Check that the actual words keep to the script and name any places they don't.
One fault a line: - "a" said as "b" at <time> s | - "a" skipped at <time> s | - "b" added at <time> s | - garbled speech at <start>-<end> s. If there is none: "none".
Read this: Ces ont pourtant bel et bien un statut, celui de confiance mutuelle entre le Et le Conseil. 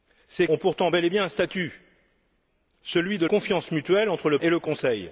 none